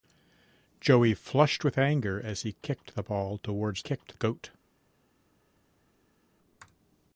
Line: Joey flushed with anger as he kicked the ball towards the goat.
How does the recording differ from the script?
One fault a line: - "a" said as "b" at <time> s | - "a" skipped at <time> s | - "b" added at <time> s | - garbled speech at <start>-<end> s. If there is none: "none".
- "the" said as "kicked" at 3.8 s